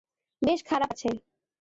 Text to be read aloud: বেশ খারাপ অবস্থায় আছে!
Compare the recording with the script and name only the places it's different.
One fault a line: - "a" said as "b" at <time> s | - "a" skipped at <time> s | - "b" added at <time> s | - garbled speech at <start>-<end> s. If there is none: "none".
- "অবস্থায়" skipped at 0.9 s